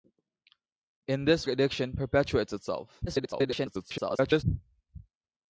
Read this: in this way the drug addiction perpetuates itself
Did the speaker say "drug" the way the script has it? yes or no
no